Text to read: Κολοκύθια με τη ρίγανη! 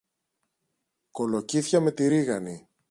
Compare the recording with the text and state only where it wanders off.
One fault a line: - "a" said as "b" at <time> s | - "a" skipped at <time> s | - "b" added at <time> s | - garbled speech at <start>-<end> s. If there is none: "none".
none